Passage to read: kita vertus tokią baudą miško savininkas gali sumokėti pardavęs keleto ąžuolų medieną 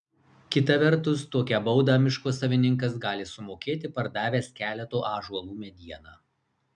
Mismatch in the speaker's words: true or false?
false